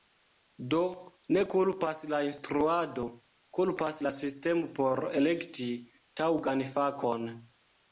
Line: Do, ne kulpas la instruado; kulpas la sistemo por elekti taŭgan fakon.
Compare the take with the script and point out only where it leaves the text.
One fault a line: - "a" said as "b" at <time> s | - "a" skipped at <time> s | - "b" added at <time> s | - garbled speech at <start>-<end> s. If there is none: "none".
none